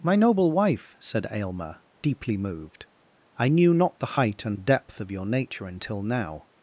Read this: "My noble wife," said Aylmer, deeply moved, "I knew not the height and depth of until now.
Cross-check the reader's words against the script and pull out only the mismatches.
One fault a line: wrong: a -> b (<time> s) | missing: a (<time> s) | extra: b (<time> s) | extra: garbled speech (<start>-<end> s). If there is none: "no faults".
extra: your nature (5.1 s)